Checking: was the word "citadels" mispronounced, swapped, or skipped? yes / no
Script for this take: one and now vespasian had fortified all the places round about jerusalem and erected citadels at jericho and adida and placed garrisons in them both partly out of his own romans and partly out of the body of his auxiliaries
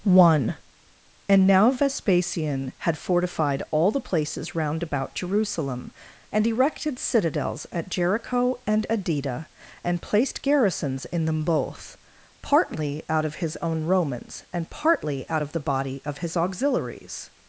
no